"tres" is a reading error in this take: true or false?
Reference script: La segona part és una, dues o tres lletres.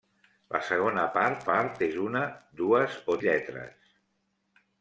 true